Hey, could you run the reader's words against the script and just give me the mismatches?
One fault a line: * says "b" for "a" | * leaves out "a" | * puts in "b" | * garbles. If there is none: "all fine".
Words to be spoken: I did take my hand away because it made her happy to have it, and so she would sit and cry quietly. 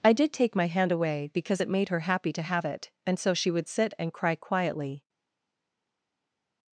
all fine